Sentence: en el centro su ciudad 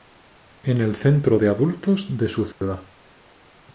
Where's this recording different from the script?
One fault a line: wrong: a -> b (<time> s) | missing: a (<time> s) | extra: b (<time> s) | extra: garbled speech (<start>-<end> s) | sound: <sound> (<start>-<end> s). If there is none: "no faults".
extra: de adultos de (1.3 s)
sound: dropout (2.5-2.6 s)